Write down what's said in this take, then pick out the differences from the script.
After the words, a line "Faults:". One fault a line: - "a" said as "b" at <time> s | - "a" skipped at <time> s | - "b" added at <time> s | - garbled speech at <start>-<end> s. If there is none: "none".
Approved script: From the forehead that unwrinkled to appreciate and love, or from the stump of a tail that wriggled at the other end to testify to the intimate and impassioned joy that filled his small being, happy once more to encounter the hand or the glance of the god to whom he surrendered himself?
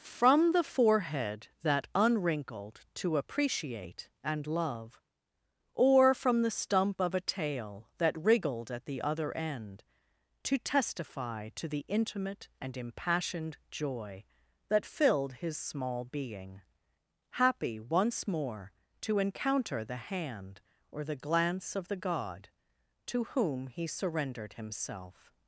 From the forehead that unwrinkled to appreciate and love, or from the stump of a tail that wriggled at the other end to testify to the intimate and impassioned joy that filled his small being, happy once more to encounter the hand or the glance of the god to whom he surrendered himself?
Faults:
none